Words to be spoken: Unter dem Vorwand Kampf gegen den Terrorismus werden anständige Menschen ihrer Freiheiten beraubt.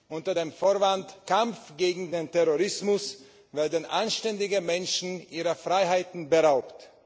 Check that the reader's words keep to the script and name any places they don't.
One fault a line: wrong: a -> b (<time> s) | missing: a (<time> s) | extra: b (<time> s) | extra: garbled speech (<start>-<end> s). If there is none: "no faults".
no faults